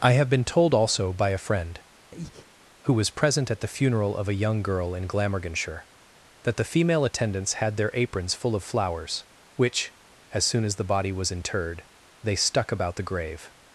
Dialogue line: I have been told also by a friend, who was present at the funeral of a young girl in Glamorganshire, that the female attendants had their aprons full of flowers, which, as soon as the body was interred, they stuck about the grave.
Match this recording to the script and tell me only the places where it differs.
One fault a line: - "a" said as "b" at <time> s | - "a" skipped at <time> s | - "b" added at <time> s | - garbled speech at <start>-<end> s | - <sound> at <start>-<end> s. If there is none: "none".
- breath at 2.1-2.5 s